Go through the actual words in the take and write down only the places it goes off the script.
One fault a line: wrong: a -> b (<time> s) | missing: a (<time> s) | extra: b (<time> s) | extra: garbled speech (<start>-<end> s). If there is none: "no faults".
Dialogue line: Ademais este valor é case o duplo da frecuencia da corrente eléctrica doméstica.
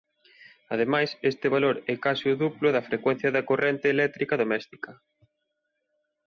no faults